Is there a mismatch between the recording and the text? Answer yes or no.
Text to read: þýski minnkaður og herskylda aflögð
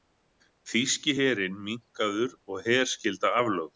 yes